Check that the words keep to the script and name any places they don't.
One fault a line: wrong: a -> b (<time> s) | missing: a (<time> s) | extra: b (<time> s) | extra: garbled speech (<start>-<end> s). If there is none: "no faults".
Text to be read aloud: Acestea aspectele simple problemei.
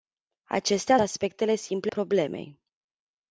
no faults